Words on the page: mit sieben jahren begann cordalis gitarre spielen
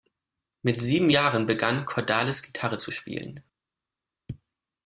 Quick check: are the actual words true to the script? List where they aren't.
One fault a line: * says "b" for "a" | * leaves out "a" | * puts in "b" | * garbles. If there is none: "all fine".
* puts in "zu"